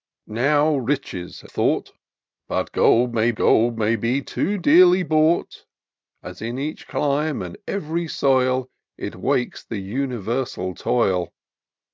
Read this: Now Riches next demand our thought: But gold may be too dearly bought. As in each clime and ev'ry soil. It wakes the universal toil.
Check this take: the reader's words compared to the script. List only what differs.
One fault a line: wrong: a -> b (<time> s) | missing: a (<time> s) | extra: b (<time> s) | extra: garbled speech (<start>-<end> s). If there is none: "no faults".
wrong: next demand our thought But -> thought But gold may (1.5 s)